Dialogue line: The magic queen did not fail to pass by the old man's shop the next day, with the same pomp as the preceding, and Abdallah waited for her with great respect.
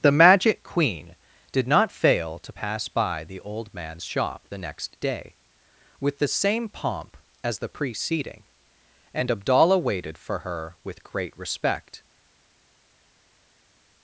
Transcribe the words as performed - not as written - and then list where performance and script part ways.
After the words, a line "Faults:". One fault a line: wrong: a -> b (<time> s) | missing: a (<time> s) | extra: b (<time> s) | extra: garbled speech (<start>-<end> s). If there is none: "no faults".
The magic queen did not fail to pass by the old man's shop the next day, with the same pomp as the preceding, and Abdallah waited for her with great respect.
Faults:
no faults